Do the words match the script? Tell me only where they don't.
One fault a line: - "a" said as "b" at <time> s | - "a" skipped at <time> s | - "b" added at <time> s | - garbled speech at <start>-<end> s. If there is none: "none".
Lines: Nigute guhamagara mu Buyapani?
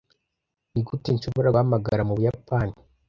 - "nshobora" added at 1.1 s